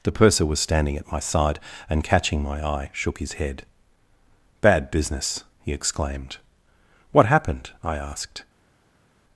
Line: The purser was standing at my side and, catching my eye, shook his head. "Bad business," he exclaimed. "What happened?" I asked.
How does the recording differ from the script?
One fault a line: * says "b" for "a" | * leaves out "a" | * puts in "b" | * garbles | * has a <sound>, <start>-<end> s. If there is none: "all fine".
all fine